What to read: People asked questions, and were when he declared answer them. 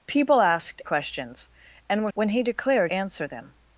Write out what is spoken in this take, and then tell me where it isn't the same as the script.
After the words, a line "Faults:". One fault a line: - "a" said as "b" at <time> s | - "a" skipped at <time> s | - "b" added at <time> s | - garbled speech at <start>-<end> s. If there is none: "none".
People asked questions, and were when he declared answer them.
Faults:
none